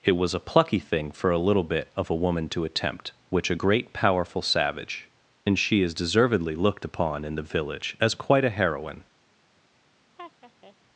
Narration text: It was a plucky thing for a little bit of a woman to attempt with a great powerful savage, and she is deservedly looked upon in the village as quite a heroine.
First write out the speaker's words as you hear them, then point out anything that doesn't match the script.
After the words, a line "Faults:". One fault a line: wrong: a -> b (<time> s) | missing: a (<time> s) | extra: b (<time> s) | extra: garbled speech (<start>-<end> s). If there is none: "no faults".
It was a plucky thing for a little bit of a woman to attempt which a great powerful savage, and she is deservedly looked upon in the village as quite a heroine.
Faults:
wrong: with -> which (3.3 s)